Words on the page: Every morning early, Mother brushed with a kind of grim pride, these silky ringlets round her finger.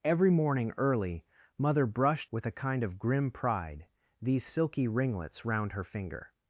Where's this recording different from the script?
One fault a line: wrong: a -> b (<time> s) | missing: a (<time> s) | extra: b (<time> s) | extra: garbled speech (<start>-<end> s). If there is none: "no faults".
no faults